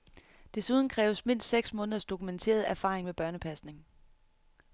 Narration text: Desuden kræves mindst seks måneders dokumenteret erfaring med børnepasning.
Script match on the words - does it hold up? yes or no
yes